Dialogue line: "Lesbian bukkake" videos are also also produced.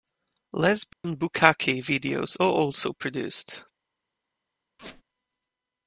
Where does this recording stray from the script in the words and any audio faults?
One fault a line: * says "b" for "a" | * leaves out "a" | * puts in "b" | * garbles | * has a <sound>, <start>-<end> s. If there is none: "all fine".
* has a dropout, 0.9-1.0 s
* leaves out "also"
* has a squeak, 4.8-5.0 s